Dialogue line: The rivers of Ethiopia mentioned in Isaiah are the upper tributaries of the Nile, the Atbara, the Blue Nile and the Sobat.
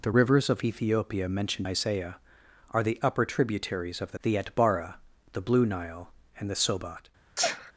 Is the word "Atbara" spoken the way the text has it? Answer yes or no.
yes